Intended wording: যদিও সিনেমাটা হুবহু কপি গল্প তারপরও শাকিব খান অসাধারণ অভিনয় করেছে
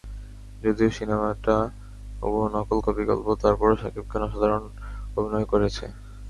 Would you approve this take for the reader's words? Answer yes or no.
no